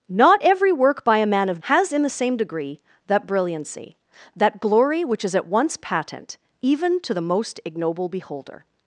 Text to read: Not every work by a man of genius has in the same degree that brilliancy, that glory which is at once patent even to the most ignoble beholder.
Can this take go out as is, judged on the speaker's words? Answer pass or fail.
fail